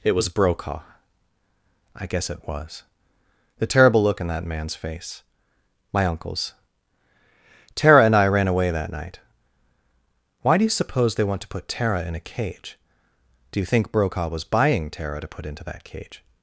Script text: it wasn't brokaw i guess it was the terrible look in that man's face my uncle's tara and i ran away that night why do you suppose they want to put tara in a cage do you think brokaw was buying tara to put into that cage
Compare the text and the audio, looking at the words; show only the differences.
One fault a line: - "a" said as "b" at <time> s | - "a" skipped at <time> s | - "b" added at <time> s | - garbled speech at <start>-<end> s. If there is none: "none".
- "wasn't" said as "was" at 0.1 s